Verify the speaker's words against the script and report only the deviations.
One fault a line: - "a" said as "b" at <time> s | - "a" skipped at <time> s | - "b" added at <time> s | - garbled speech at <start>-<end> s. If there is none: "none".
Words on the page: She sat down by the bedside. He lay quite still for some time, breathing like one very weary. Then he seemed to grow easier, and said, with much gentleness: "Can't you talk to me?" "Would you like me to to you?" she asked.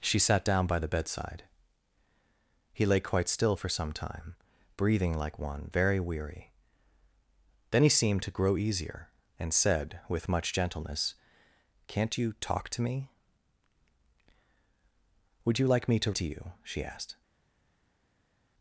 none